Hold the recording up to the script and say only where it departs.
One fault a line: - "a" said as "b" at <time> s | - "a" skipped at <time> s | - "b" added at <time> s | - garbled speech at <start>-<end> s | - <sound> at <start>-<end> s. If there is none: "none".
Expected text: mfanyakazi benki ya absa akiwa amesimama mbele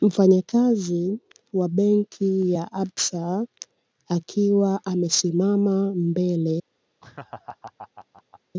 - "wa" added at 1.5 s
- laugh at 7.0-8.4 s